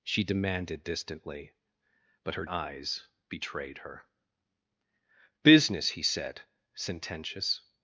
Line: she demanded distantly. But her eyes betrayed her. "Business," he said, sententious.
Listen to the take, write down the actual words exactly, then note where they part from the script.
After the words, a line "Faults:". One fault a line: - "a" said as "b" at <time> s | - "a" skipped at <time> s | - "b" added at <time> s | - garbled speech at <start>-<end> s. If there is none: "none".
she demanded distantly. But her eyes betrayed her. "Business," he said, sententious.
Faults:
none